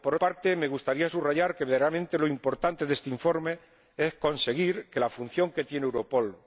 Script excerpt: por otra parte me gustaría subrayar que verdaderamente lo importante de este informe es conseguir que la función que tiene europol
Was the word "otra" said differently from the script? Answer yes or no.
yes